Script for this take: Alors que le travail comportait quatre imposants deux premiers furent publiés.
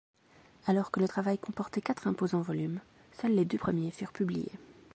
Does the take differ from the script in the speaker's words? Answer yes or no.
yes